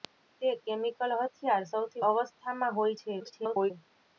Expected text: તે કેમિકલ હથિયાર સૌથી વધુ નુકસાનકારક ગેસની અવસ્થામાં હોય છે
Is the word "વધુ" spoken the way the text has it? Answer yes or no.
no